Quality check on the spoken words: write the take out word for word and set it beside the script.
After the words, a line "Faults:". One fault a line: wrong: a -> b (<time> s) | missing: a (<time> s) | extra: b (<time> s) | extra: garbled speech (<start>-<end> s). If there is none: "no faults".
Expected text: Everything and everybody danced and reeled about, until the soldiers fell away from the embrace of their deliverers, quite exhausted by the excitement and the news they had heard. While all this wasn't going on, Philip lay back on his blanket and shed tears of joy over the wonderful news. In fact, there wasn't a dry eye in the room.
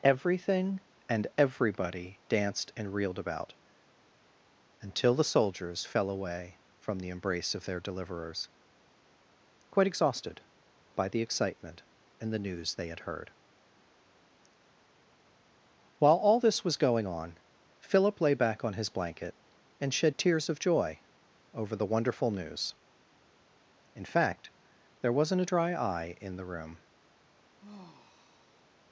Everything and everybody danced and reeled about, until the soldiers fell away from the embrace of their deliverers, quite exhausted by the excitement and the news they had heard. While all this was going on, Philip lay back on his blanket and shed tears of joy over the wonderful news. In fact, there wasn't a dry eye in the room.
Faults:
wrong: wasn't -> was (16.6 s)